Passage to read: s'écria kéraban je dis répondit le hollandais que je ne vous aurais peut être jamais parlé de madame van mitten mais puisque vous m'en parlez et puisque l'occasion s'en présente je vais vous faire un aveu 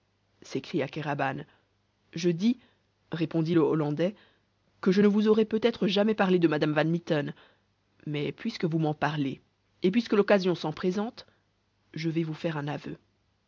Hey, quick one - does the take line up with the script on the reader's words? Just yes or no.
yes